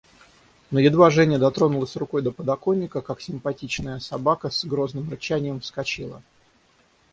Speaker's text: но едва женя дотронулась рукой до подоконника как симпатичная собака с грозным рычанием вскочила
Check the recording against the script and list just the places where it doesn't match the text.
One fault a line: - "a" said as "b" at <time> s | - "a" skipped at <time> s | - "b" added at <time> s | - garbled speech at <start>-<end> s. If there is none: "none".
none